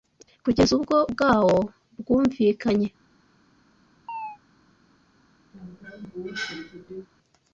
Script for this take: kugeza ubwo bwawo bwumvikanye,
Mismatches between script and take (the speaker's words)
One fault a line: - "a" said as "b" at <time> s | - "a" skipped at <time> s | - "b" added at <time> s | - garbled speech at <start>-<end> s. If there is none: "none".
none